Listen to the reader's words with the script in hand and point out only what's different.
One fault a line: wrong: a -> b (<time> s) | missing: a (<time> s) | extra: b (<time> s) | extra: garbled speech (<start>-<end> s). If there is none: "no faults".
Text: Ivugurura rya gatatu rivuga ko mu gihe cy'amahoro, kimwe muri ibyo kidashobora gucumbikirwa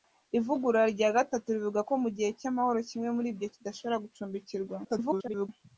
extra: garbled speech (4.8-5.5 s)